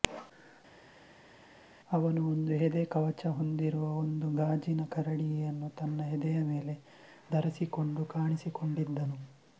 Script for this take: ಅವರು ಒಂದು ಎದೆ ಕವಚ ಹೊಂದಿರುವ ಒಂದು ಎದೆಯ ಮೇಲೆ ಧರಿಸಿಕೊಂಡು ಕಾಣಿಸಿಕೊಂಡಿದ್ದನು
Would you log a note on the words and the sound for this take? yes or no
yes